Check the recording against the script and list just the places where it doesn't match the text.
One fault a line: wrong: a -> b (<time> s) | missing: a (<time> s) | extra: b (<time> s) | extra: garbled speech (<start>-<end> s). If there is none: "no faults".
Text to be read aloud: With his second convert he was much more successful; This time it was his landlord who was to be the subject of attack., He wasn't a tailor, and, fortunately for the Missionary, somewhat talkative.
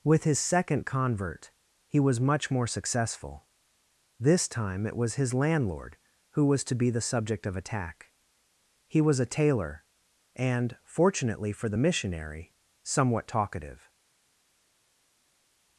wrong: wasn't -> was (9.0 s)